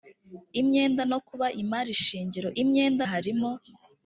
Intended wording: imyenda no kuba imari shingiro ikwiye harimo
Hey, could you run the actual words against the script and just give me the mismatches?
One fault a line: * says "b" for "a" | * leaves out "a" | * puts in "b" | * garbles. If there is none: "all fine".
* says "imyenda" for "ikwiye"